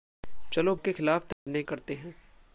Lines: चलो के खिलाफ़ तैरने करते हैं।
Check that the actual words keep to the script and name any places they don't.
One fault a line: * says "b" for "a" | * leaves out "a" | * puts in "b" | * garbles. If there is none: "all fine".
all fine